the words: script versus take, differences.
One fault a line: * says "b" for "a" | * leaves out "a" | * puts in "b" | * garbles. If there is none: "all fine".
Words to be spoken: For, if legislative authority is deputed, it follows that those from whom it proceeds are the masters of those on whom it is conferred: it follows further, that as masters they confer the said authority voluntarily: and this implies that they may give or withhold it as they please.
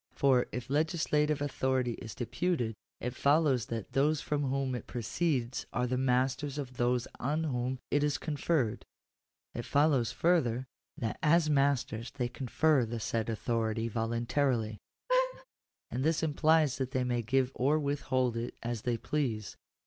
all fine